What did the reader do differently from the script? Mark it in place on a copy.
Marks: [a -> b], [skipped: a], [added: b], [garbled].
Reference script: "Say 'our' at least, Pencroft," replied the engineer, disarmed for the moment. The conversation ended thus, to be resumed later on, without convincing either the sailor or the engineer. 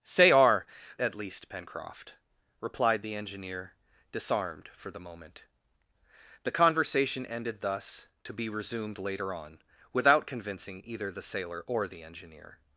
"Say 'our' at least, Pencroft," replied the engineer, disarmed for the moment. The conversation ended thus, to be resumed later on, without convincing either the sailor or the engineer.